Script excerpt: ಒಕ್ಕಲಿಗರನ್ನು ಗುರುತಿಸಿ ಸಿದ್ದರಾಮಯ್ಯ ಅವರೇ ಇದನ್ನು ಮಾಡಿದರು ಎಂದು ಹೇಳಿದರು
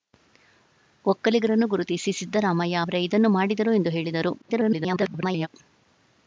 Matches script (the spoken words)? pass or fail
fail